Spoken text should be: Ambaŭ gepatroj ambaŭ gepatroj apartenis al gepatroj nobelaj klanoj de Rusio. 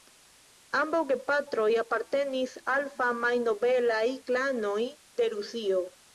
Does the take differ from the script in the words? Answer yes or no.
yes